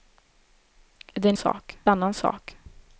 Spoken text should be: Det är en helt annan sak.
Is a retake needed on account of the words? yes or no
yes